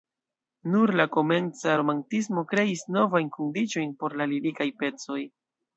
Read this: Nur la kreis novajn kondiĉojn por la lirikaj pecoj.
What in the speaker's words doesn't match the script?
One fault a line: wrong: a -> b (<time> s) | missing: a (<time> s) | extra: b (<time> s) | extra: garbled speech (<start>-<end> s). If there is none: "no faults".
extra: komenca romantismo (1.2 s)